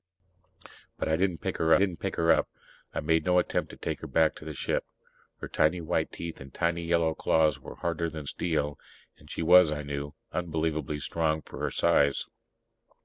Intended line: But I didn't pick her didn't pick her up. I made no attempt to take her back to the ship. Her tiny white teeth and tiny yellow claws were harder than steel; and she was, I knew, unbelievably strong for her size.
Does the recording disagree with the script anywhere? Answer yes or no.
no